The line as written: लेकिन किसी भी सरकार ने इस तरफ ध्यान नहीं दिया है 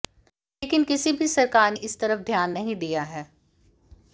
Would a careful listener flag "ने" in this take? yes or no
yes